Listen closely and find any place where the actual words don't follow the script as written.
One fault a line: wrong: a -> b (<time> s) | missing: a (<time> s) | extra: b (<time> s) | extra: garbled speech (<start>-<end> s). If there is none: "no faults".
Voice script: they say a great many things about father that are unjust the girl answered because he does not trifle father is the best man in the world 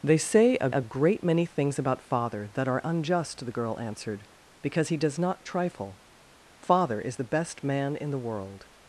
extra: a (0.7 s)